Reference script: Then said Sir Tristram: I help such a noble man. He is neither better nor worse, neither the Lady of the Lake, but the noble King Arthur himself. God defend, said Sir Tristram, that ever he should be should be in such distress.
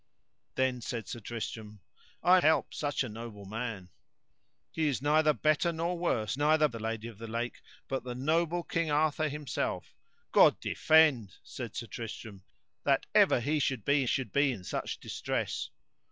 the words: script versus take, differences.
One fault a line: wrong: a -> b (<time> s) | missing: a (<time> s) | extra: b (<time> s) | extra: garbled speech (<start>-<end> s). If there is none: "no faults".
no faults